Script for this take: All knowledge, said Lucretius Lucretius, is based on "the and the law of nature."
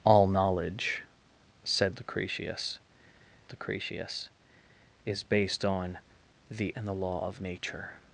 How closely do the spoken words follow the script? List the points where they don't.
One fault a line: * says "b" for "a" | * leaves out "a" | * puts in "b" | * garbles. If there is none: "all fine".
all fine